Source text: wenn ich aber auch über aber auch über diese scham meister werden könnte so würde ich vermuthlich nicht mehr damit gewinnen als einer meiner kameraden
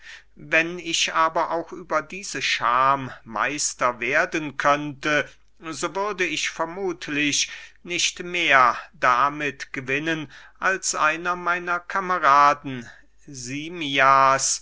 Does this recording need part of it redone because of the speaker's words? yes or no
yes